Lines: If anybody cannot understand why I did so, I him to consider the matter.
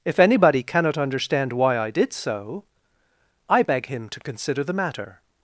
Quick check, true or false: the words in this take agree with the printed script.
false